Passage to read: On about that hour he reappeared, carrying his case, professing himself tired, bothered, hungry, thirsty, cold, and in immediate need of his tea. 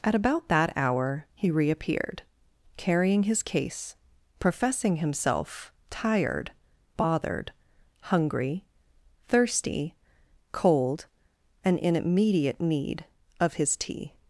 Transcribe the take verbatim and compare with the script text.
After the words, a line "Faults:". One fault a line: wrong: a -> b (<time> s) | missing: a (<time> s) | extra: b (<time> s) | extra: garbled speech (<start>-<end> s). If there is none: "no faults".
At about that hour he reappeared, carrying his case, professing himself tired, bothered, hungry, thirsty, cold, and in immediate need of his tea.
Faults:
wrong: On -> At (0.0 s)